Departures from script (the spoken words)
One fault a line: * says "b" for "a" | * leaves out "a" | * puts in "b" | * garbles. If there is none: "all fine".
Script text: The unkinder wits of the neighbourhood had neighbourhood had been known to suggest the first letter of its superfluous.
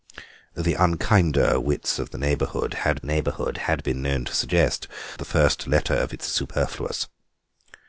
all fine